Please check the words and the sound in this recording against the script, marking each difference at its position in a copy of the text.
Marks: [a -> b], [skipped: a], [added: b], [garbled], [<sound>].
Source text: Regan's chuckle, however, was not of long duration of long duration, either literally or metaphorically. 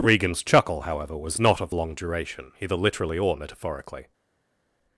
Regan's chuckle, however, was not of long duration [skipped: of long duration,] either literally or metaphorically.